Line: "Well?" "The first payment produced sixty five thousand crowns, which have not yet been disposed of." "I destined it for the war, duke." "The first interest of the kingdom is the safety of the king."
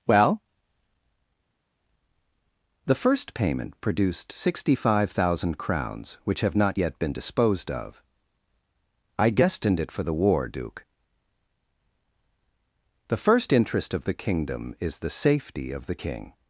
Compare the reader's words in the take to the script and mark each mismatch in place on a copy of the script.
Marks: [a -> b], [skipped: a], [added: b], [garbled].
"Well?" "The first payment produced sixty five thousand crowns, which have not yet been disposed of." "I destined it for the war, duke." "The first interest of the kingdom is the safety of the king."